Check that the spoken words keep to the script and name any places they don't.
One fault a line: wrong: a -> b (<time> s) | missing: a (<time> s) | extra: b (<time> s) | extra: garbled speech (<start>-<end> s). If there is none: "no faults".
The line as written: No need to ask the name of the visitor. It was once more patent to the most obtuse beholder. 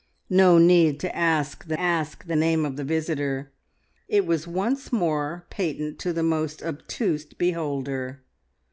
extra: ask the (1.8 s)